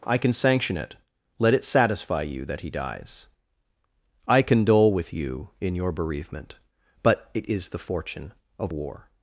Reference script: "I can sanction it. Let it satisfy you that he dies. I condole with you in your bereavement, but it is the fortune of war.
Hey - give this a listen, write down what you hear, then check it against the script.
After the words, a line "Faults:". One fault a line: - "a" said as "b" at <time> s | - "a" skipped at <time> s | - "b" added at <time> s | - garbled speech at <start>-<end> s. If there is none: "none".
"I can sanction it. Let it satisfy you that he dies. I condole with you in your bereavement, but it is the fortune of war.
Faults:
none